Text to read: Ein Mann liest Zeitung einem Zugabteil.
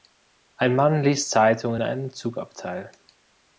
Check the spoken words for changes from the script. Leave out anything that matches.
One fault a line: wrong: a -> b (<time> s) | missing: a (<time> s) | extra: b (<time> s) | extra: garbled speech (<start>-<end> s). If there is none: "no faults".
no faults